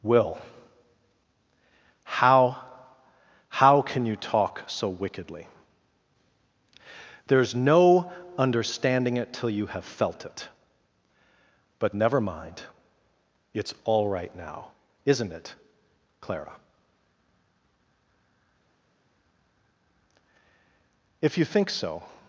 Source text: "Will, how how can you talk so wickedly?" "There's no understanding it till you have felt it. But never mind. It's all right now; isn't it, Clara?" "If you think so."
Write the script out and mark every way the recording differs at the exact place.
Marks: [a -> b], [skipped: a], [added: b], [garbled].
"Will, how how can you talk so wickedly?" "There's no understanding it till you have felt it. But never mind. It's all right now; isn't it, Clara?" "If you think so."